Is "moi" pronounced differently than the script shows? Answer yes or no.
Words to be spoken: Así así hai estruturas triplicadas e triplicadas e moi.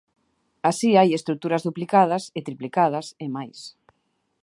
yes